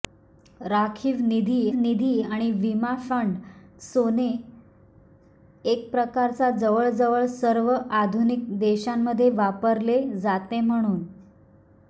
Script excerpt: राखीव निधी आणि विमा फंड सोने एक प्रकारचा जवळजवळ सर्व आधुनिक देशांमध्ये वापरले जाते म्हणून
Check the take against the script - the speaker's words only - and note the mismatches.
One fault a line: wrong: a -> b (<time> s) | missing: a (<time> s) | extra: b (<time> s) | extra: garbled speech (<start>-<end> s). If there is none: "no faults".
extra: निधी (1.8 s)